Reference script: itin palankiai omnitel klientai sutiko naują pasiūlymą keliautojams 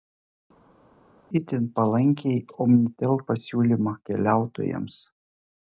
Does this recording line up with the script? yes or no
no